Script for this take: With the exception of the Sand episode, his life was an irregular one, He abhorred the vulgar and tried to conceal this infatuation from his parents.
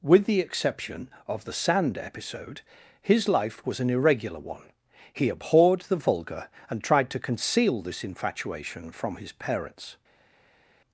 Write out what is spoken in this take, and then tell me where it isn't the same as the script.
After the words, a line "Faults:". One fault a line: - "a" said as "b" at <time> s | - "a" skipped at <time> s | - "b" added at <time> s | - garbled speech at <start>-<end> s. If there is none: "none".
With the exception of the Sand episode, his life was an irregular one, He abhorred the vulgar and tried to conceal this infatuation from his parents.
Faults:
none